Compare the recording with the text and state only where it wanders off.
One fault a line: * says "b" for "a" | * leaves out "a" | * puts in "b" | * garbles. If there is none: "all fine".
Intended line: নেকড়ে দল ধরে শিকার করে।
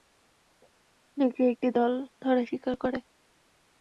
* puts in "একটি"